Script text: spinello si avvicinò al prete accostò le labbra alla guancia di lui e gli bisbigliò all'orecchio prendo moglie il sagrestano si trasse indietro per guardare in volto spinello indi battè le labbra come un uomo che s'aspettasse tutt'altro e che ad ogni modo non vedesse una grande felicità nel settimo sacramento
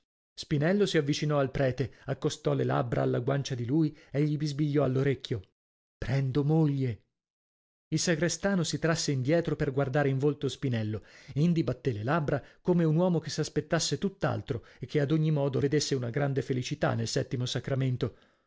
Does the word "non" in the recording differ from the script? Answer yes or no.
yes